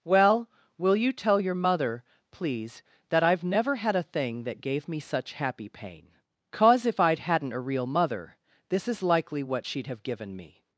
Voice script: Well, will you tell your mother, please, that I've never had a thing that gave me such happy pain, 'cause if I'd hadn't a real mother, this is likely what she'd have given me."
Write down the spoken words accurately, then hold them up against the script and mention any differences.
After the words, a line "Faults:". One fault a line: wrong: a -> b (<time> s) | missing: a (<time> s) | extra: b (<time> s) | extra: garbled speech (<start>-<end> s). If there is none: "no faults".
Well, will you tell your mother, please, that I've never had a thing that gave me such happy pain, 'cause if I'd hadn't a real mother, this is likely what she'd have given me."
Faults:
no faults